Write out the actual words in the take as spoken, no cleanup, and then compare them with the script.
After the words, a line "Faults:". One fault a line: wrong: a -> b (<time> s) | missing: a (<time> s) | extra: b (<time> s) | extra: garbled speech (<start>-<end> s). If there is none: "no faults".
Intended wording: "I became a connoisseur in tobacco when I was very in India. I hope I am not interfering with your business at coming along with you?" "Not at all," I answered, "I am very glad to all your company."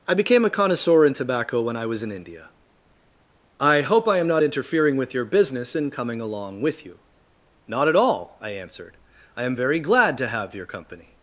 "I became a connoisseur in tobacco when I was in India. I hope I am not interfering with your business in coming along with you?" "Not at all," I answered, "I am very glad to have your company."
Faults:
missing: very (2.0 s)
wrong: at -> in (5.7 s)
wrong: all -> have (10.3 s)